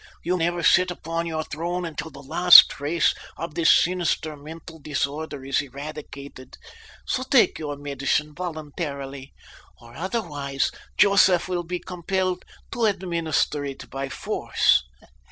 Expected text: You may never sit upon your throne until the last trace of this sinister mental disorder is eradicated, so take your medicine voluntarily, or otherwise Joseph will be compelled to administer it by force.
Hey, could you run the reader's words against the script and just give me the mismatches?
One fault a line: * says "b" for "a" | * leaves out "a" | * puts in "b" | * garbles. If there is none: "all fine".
* leaves out "may"